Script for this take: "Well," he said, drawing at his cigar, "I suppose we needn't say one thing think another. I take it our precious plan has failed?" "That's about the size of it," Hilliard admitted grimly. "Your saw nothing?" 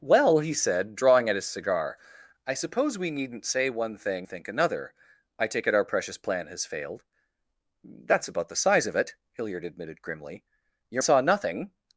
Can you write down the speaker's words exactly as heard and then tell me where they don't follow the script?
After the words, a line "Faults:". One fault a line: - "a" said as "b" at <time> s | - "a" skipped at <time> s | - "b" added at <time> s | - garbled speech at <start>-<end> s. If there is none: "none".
"Well," he said, drawing at his cigar, "I suppose we needn't say one thing think another. I take it our precious plan has failed?" "That's about the size of it," Hilliard admitted grimly. "Your saw nothing?"
Faults:
none